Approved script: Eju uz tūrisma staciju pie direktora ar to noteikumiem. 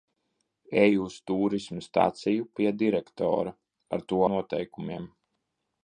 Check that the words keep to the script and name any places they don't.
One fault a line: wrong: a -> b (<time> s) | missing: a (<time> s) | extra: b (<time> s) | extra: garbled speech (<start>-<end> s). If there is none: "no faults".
no faults